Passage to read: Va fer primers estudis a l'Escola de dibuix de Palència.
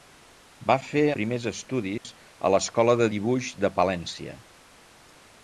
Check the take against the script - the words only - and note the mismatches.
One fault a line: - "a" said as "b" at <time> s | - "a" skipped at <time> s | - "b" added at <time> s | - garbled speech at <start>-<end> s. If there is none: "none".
none